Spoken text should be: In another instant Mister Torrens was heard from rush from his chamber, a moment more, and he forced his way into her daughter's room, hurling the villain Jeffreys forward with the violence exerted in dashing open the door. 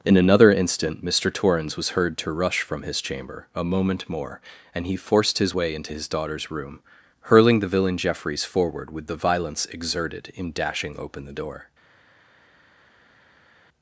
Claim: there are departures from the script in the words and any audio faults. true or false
true